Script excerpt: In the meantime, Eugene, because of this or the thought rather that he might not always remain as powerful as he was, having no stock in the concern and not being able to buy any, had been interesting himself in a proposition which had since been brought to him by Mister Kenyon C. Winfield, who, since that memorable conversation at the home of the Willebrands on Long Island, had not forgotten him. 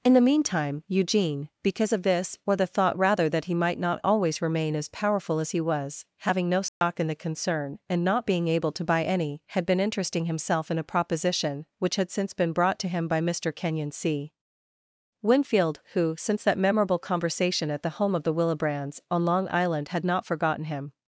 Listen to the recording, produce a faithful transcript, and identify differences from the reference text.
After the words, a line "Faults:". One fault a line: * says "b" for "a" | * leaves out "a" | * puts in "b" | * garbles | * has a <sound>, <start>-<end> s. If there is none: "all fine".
In the meantime, Eugene, because of this or the thought rather that he might not always remain as powerful as he was, having no stock in the concern and not being able to buy any, had been interesting himself in a proposition which had since been brought to him by Mister Kenyon C. Winfield, who, since that memorable conversation at the home of the Willebrands on Long Island, had not forgotten him.
Faults:
* has a dropout, 6.7-6.8 s